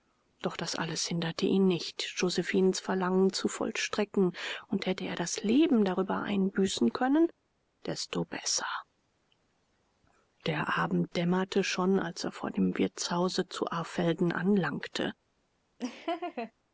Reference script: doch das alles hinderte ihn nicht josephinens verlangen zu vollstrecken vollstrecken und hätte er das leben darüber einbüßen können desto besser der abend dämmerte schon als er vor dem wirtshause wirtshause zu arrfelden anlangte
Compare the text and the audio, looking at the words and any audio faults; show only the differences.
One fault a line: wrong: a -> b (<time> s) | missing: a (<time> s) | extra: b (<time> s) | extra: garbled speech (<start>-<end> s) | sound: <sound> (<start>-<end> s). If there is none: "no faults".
missing: vollstrecken (4.3 s)
missing: wirtshause (13.5 s)
sound: laugh (15.8-16.5 s)